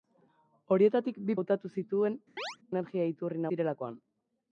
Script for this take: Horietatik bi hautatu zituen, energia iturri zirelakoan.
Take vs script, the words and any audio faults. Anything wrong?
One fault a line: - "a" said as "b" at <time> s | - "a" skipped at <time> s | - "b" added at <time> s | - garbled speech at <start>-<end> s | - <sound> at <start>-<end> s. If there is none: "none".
- chirp at 2.4-2.6 s